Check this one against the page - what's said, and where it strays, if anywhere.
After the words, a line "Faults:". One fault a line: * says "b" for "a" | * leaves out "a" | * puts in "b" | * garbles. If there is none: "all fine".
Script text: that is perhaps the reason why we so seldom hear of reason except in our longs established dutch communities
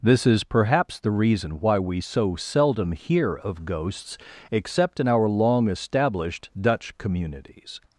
this is perhaps the reason why we so seldom hear of ghosts except in our long established dutch communities
Faults:
* says "this" for "that"
* says "ghosts" for "reason"
* says "long" for "longs"